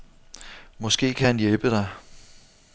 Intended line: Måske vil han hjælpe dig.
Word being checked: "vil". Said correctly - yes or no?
no